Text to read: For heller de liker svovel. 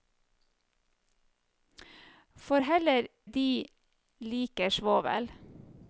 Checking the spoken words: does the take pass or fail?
pass